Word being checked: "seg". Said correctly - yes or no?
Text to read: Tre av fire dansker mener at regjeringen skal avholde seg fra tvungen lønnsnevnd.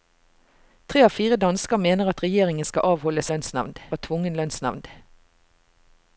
no